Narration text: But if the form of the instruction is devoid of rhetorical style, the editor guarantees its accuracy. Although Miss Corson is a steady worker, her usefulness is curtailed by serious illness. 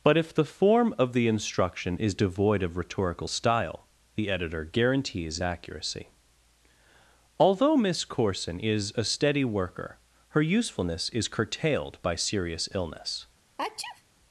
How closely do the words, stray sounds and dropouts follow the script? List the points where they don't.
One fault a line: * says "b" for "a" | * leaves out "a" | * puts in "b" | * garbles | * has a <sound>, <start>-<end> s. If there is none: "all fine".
* leaves out "its"
* has a sneeze, 13.6-14.0 s